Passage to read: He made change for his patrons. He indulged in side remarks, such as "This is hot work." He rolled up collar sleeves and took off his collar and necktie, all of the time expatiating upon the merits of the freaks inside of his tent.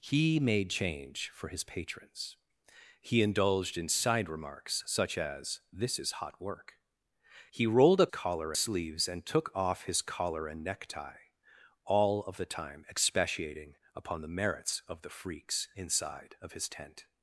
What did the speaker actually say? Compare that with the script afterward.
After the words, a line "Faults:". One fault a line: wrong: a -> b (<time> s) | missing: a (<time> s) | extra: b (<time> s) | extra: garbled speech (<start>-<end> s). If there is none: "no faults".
He made change for his patrons. He indulged in side remarks, such as "This is hot work." He rolled up collar sleeves and took off his collar and necktie, all of the time expatiating upon the merits of the freaks inside of his tent.
Faults:
no faults